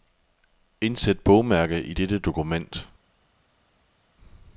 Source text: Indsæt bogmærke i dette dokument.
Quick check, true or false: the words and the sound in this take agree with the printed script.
true